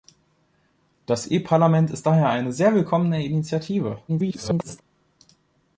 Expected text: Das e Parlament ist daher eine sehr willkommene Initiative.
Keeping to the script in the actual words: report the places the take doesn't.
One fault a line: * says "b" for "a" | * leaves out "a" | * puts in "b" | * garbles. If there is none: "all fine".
* garbles